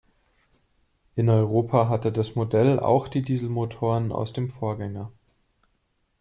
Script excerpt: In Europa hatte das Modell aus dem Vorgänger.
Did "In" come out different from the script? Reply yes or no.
no